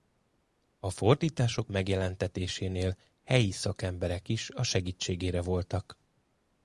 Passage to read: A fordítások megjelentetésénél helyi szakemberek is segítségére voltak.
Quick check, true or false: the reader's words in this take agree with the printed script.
false